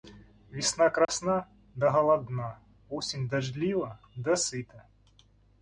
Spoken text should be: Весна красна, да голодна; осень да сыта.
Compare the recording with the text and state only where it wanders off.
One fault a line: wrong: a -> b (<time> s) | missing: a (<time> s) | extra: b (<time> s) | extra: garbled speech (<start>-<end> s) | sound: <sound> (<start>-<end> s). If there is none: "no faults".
sound: dropout (1.0-1.1 s)
extra: дождлива (3.3 s)